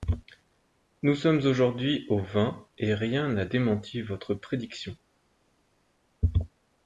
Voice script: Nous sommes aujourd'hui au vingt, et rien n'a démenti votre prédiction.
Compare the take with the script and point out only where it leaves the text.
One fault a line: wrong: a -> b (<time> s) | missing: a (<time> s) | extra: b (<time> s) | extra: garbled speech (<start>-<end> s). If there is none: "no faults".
no faults